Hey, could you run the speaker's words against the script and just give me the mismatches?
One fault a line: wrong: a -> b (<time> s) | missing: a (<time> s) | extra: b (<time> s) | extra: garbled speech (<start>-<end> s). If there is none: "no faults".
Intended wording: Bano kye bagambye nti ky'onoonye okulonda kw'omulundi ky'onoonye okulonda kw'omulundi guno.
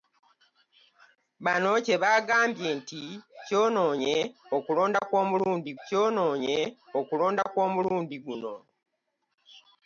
no faults